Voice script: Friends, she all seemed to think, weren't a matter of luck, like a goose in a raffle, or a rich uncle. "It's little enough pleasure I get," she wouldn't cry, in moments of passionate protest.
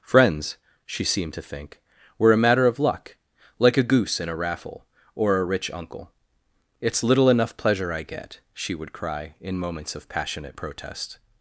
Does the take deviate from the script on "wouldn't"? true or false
true